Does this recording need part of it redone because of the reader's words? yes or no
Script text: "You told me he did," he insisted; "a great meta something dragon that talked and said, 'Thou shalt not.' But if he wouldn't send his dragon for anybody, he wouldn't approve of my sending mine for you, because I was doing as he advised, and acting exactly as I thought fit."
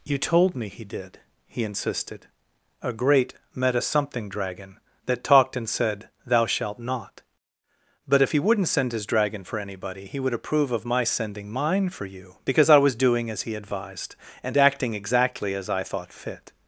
yes